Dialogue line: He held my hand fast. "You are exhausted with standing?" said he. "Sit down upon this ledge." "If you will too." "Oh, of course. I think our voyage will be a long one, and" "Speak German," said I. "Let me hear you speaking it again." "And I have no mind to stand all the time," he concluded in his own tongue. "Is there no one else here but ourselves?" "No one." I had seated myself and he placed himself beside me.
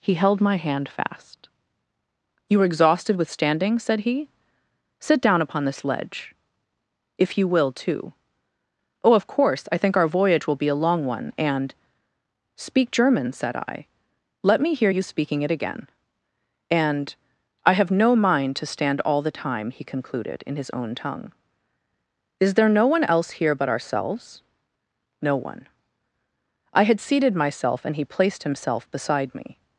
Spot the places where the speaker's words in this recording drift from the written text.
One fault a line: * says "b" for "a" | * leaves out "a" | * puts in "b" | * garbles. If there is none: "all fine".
all fine